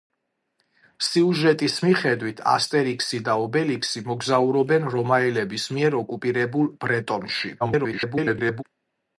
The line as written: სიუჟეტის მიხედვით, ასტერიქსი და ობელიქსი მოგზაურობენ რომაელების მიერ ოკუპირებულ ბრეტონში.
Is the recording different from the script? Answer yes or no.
yes